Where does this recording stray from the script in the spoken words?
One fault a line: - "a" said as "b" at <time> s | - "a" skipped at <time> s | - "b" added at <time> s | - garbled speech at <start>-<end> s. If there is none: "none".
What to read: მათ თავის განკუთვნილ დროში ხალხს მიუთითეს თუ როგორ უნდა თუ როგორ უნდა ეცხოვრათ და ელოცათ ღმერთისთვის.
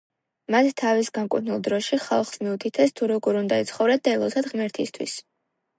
- "თუ როგორ უნდა" skipped at 3.6 s